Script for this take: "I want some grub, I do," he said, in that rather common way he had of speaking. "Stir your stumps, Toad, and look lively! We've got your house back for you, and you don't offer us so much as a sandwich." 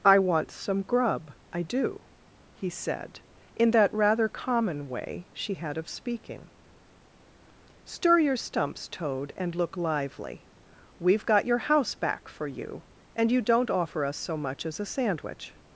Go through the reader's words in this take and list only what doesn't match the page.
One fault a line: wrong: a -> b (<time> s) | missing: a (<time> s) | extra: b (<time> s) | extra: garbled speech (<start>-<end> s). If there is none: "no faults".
wrong: he -> she (5.3 s)